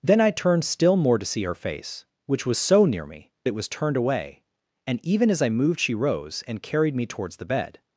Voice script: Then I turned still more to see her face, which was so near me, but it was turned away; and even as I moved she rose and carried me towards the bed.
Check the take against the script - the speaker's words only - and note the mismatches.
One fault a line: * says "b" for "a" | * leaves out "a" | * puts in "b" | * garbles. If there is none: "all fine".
* leaves out "but"